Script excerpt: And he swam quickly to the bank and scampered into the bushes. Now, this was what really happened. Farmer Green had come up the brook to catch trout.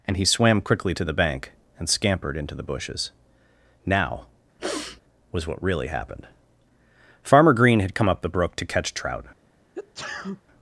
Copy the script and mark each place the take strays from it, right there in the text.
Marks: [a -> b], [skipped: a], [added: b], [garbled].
And he swam quickly to the bank and scampered into the bushes. Now, [skipped: this] was what really happened. Farmer Green had come up the brook to catch trout.